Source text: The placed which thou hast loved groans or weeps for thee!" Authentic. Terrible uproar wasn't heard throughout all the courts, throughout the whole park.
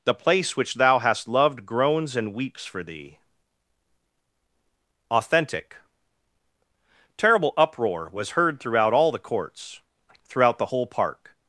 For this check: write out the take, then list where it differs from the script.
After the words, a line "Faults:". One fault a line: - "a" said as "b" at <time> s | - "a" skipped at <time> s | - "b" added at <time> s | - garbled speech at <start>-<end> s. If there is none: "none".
The place which thou hast loved groans and weeps for thee!" Authentic. Terrible uproar was heard throughout all the courts, throughout the whole park.
Faults:
- "placed" said as "place" at 0.1 s
- "or" said as "and" at 2.1 s
- "wasn't" said as "was" at 8.1 s